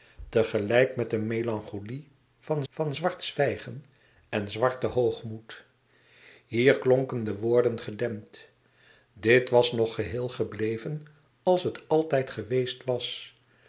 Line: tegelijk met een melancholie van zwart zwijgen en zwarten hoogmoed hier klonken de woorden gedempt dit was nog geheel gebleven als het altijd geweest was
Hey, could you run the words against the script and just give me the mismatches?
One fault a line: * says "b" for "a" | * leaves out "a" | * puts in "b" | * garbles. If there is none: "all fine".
* puts in "van"